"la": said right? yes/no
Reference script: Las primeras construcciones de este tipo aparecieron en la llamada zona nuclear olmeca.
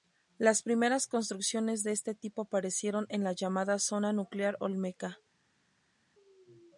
yes